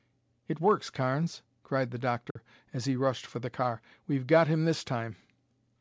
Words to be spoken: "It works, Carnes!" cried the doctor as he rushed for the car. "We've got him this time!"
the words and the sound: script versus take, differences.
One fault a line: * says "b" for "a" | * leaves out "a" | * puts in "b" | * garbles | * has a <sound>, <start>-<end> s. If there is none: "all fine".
* has a dropout, 2.3-2.4 s